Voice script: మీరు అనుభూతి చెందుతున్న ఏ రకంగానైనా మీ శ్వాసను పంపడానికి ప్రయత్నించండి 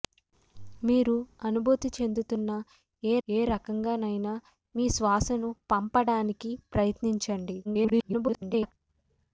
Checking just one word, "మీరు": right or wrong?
right